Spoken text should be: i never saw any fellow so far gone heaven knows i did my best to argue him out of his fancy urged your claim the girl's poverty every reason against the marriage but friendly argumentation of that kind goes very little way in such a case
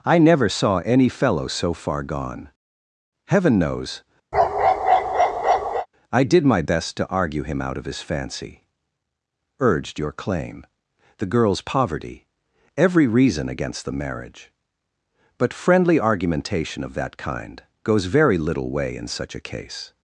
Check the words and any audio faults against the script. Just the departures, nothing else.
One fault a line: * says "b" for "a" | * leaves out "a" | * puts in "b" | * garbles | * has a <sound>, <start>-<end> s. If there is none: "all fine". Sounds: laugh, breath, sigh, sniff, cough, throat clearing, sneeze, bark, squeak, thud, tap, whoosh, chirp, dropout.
* has a bark, 4.3-5.9 s